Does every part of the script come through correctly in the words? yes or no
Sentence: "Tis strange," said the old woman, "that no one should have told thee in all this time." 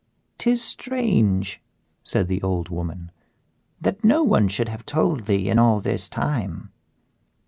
yes